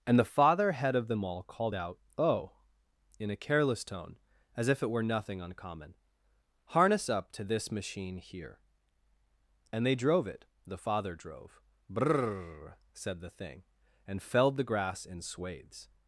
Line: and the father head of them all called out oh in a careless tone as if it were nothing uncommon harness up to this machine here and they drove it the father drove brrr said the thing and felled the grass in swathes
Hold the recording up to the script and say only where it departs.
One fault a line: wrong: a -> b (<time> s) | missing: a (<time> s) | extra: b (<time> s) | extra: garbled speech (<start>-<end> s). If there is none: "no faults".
no faults